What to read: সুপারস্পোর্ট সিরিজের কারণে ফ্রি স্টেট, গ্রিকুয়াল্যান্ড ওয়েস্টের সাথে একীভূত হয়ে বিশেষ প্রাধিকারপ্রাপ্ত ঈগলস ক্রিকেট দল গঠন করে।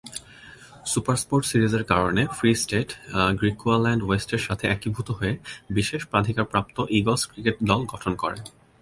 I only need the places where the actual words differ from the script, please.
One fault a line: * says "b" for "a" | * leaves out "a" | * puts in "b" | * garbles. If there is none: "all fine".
all fine